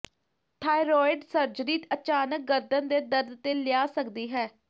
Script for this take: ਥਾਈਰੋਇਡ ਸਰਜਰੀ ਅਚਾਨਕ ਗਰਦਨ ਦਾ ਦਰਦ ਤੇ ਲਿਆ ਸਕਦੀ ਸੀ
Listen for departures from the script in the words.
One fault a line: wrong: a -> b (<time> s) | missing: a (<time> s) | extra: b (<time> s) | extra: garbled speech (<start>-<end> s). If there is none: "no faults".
wrong: ਦਾ -> ਦੇ (2.9 s)
wrong: ਸੀ -> ਹੈ (4.3 s)